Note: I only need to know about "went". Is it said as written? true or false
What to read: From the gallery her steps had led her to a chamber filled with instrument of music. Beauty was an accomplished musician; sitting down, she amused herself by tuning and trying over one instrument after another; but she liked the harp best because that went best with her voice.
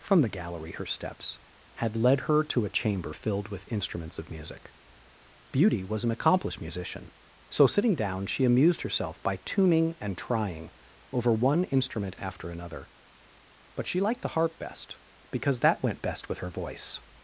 true